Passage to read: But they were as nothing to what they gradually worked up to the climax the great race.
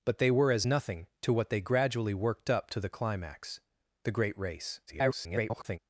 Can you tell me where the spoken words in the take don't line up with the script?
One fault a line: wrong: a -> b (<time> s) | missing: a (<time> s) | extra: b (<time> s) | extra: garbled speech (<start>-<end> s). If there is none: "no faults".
extra: garbled speech (4.9-5.8 s)